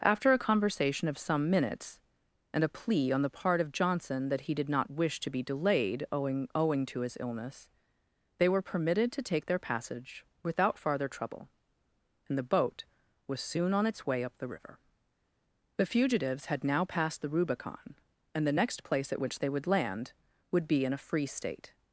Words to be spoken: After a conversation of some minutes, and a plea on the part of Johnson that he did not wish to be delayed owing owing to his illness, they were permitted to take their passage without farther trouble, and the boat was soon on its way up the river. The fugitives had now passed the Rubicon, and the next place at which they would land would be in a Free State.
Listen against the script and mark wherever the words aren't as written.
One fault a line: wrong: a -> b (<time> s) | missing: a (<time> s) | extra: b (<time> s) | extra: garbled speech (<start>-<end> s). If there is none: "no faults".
no faults